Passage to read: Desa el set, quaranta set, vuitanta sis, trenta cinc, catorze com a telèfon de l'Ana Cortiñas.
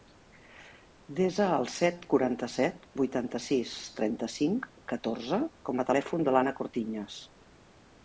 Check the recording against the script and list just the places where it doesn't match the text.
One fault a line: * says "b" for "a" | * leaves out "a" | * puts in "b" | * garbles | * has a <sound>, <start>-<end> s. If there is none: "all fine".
all fine